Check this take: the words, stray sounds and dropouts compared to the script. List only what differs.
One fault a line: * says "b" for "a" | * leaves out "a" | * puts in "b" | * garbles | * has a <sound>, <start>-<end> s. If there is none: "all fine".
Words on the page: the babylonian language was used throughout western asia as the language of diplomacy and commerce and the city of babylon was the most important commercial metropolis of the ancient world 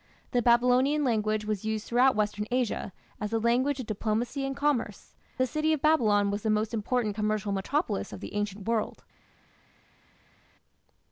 * leaves out "and"